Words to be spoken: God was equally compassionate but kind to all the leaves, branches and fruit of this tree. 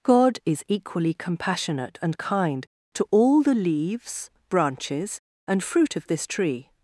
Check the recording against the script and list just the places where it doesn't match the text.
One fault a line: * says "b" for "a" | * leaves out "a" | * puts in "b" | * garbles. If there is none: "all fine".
* says "is" for "was"
* says "and" for "but"